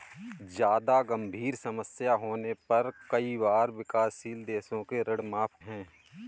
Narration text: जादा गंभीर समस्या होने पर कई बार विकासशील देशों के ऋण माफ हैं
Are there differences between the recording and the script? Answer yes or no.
no